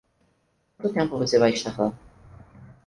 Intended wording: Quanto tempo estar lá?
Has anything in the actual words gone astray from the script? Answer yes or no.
yes